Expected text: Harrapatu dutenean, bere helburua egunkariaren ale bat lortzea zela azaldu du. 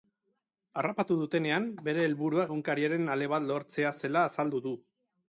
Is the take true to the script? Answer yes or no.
yes